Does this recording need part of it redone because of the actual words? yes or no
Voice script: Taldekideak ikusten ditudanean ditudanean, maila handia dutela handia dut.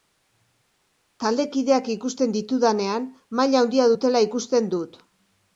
yes